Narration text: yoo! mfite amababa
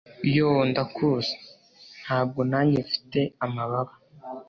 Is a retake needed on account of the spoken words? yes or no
yes